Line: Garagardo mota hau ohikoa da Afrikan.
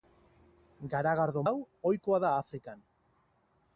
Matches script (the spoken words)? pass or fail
fail